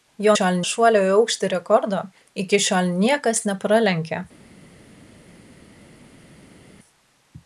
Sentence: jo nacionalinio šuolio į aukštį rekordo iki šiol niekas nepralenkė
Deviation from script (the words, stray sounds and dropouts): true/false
true